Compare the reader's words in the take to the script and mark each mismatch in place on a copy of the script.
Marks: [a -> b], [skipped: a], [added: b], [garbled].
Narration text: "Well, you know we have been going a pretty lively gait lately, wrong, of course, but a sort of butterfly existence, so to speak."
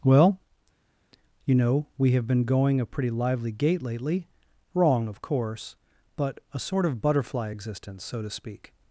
"Well, you know we have been going a pretty lively gait lately, wrong, of course, but a sort of butterfly existence, so to speak."